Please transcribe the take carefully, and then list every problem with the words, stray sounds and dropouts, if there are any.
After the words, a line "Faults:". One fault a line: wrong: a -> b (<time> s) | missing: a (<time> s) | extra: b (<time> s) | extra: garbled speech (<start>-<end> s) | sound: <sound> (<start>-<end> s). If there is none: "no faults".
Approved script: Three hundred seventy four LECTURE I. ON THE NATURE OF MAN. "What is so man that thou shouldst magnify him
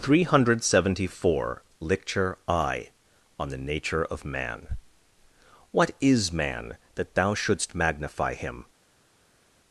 Three hundred seventy four LECTURE I. ON THE NATURE OF MAN. "What is man that thou shouldst magnify him
Faults:
missing: so (6.3 s)